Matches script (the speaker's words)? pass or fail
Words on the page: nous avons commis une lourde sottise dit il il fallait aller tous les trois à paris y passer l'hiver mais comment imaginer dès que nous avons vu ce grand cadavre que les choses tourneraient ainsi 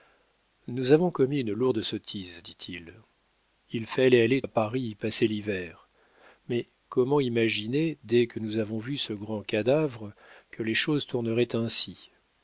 fail